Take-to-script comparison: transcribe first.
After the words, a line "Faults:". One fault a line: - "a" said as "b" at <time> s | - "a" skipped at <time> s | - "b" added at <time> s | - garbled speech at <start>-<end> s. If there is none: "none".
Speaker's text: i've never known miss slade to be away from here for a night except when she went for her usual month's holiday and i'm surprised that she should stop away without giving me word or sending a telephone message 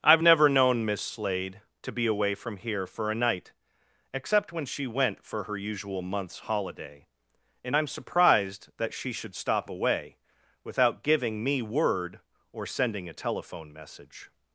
i've never known miss slade to be away from here for a night except when she went for her usual month's holiday and i'm surprised that she should stop away without giving me word or sending a telephone message
Faults:
none